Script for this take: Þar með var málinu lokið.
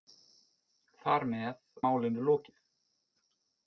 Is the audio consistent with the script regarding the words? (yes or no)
no